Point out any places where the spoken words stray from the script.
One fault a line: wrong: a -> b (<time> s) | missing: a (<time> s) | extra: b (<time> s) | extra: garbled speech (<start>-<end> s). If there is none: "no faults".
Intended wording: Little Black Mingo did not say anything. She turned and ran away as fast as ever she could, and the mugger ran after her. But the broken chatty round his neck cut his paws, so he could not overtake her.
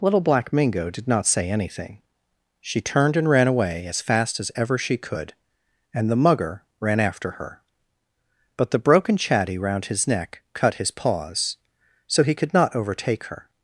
no faults